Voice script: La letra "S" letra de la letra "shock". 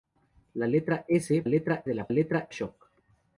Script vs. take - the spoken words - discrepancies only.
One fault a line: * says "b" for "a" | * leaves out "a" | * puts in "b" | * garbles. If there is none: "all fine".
all fine